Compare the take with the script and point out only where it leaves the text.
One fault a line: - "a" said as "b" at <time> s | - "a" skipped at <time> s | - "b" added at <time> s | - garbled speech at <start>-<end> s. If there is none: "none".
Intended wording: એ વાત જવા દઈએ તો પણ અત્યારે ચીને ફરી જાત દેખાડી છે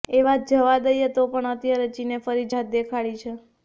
none